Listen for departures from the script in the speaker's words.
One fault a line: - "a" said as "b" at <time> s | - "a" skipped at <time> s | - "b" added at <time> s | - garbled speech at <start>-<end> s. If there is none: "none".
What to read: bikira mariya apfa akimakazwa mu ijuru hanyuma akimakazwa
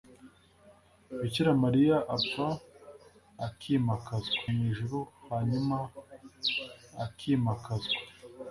none